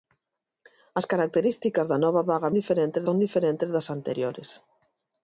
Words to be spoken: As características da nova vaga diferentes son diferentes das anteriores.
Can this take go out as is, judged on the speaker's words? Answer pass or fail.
pass